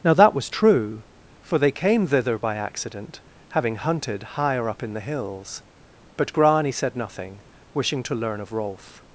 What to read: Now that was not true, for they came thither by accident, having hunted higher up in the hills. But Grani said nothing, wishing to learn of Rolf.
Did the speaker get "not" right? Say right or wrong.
wrong